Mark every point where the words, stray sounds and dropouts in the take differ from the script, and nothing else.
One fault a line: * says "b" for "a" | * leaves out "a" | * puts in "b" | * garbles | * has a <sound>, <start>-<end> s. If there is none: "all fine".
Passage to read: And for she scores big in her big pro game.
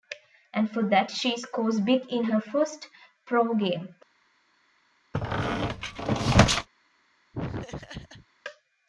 * puts in "that"
* says "first" for "big"
* has a squeak, 5.1-6.7 s
* has a laugh, 7.3-8.3 s